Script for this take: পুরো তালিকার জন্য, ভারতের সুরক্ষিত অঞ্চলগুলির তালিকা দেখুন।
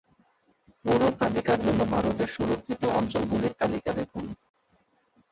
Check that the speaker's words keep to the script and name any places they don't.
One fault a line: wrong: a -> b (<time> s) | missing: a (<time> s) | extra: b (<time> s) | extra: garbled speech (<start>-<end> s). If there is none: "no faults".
no faults